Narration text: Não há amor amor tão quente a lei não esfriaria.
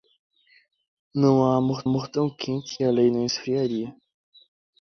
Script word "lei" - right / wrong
right